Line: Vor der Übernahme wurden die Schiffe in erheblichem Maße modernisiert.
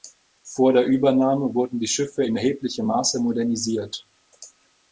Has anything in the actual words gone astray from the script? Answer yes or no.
no